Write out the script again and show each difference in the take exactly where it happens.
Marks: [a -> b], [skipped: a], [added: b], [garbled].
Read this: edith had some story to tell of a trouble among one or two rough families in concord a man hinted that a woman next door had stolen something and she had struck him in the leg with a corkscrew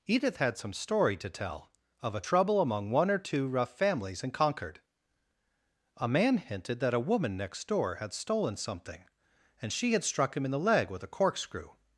edith had some story to tell of a trouble among one or two rough families in concord a man hinted that a woman next door had stolen something and she had struck him in the leg with a corkscrew